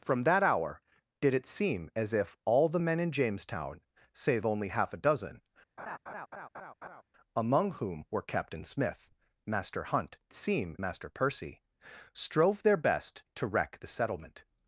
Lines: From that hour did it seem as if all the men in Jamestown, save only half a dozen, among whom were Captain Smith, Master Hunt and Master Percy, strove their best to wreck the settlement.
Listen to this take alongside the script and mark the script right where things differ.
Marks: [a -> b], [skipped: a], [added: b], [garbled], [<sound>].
From that hour did it seem as if all the men in Jamestown, save only half a dozen, [laugh] among whom were Captain Smith, Master Hunt [and -> seem] Master Percy, strove their best to wreck the settlement.